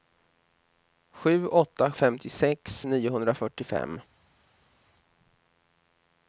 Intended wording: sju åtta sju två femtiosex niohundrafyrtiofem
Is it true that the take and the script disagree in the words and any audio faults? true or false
true